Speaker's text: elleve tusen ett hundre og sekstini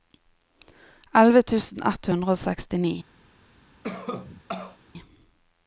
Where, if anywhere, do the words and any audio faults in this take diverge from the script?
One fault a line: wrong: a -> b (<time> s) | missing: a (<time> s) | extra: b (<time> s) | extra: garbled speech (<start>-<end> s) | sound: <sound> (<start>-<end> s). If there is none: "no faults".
sound: cough (3.8-4.8 s)